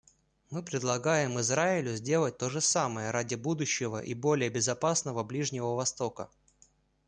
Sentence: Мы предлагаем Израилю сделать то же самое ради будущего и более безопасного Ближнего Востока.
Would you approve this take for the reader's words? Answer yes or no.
yes